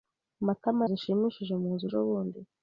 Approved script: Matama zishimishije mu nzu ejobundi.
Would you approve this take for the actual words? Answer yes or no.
yes